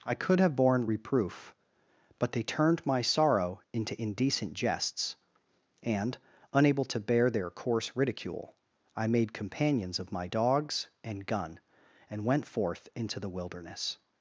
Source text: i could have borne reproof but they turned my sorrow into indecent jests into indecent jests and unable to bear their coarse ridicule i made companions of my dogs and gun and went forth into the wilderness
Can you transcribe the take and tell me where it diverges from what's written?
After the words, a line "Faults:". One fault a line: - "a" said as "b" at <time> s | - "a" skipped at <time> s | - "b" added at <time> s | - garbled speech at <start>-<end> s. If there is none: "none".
i could have borne reproof but they turned my sorrow into indecent jests and unable to bear their coarse ridicule i made companions of my dogs and gun and went forth into the wilderness
Faults:
- "into indecent jests" skipped at 5.2 s